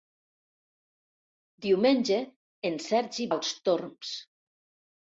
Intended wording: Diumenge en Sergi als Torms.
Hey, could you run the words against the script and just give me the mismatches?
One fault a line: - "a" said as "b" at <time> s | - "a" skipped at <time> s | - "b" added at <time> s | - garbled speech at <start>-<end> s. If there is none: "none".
none